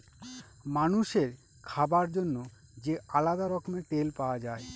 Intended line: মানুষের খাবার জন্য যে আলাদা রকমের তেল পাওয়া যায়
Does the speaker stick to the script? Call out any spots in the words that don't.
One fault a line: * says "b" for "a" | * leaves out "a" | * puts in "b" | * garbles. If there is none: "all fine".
all fine